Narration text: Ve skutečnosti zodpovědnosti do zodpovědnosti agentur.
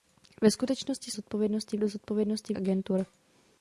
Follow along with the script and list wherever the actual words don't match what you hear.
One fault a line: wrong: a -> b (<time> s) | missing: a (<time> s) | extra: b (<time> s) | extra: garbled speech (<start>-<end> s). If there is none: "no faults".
no faults